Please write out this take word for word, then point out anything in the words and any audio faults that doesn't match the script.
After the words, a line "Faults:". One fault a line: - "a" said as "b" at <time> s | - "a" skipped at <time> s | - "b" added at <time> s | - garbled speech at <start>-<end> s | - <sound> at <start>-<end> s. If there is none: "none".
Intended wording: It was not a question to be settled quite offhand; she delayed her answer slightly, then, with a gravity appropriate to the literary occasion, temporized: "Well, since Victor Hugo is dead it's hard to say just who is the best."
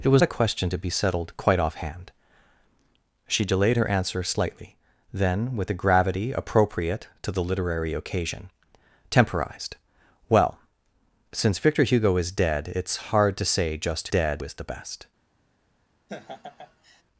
It was a question to be settled quite offhand; she delayed her answer slightly, then, with a gravity appropriate to the literary occasion, temporized: "Well, since Victor Hugo is dead it's hard to say just dead is the best."
Faults:
- "not" skipped at 0.2 s
- "who" said as "dead" at 14.1 s
- laugh at 16.1-17.0 s